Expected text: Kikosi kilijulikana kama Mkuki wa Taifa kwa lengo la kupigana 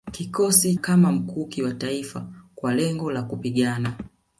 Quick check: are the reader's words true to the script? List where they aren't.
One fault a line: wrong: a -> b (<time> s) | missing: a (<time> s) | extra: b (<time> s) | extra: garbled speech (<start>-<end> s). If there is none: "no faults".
missing: kilijulikana (0.8 s)